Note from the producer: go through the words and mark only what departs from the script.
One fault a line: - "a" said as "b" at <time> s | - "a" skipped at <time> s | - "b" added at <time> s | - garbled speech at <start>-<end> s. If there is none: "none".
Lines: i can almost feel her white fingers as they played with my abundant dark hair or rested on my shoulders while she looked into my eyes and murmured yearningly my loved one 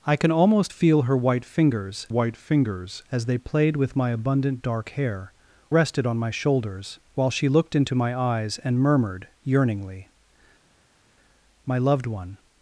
- "white fingers" added at 2.1 s
- "or" skipped at 5.3 s